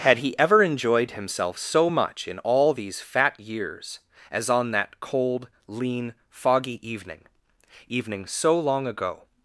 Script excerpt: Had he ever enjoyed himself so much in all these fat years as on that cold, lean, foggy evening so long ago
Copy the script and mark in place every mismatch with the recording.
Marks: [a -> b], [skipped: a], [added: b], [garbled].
Had he ever enjoyed himself so much in all these fat years as on that cold, lean, foggy evening [added: evening] so long ago